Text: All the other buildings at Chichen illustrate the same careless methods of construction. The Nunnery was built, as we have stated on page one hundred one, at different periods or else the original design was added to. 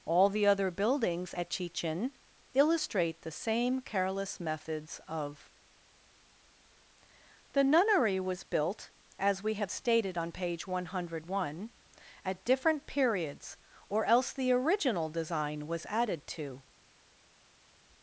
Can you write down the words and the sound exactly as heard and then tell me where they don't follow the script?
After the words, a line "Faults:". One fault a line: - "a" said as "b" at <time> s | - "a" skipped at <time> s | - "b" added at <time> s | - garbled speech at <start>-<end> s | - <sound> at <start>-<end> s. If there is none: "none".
All the other buildings at Chichen illustrate the same careless methods of. The Nunnery was built, as we have stated on page one hundred one, at different periods or else the original design was added to.
Faults:
- "construction" skipped at 5.5 s